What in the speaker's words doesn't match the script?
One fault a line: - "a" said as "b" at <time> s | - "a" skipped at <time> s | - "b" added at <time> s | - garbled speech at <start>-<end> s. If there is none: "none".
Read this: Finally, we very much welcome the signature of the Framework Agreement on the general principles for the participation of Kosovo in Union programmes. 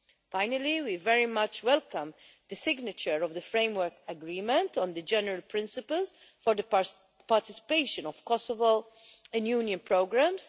none